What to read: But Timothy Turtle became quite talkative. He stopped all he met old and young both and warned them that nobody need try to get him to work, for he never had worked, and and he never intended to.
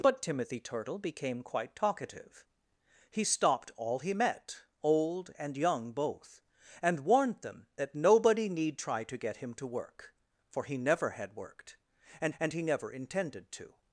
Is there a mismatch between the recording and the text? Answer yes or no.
no